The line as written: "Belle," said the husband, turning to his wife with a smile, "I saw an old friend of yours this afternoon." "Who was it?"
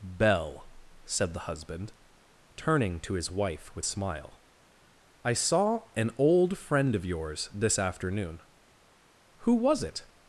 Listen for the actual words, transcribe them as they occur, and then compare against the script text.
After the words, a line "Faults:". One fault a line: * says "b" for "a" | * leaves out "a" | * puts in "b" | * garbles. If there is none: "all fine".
"Belle," said the husband, turning to his wife with smile, "I saw an old friend of yours this afternoon." "Who was it?"
Faults:
* leaves out "a"